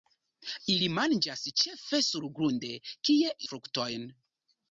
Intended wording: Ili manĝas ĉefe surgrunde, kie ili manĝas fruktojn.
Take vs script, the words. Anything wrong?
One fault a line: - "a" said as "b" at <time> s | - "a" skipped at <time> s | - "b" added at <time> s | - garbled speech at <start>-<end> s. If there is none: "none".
- "ili manĝas" skipped at 3.4 s